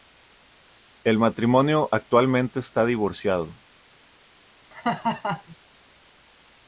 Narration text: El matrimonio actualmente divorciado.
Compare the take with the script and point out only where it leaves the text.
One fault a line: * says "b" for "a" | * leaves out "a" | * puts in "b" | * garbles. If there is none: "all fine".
* puts in "está"